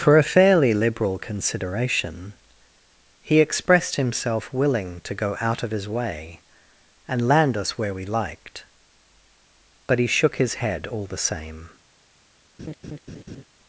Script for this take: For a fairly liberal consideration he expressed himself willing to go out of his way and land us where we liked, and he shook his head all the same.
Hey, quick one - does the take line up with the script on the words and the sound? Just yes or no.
no